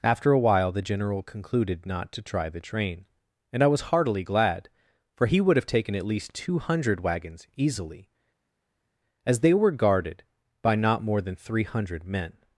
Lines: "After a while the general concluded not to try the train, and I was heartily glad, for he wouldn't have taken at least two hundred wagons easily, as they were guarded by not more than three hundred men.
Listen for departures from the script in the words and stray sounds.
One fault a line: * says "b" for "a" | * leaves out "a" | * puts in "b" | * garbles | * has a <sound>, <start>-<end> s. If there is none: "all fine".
* says "would" for "wouldn't"